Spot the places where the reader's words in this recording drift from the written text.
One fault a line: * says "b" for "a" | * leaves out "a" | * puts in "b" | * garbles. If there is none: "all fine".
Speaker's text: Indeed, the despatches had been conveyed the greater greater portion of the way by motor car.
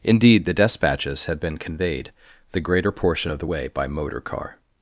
* leaves out "greater"